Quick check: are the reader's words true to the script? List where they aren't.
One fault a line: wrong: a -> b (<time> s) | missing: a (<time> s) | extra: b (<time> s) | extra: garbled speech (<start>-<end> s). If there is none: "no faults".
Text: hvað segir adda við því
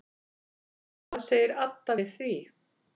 no faults